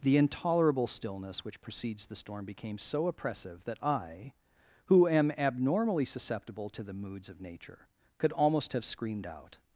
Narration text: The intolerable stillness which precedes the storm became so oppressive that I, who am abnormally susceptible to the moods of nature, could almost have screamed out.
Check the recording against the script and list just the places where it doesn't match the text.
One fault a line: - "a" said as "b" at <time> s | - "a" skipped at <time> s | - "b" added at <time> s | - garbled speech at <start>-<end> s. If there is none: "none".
none